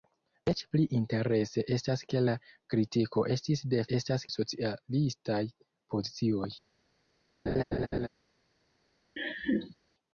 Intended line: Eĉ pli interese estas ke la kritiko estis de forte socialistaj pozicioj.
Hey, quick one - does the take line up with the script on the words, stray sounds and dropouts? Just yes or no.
no